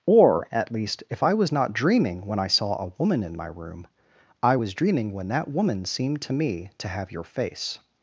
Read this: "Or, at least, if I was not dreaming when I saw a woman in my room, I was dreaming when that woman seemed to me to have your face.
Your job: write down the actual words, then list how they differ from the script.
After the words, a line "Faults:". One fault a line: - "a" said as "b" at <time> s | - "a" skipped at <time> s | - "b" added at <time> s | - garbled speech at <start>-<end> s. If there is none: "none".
"Or, at least, if I was not dreaming when I saw a woman in my room, I was dreaming when that woman seemed to me to have your face.
Faults:
none